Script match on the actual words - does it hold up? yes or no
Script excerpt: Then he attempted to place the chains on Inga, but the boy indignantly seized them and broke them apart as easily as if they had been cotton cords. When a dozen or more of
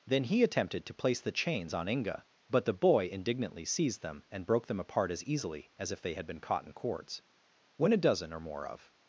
yes